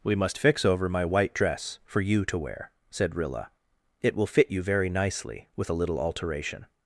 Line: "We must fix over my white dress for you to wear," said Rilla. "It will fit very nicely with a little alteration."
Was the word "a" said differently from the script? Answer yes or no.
no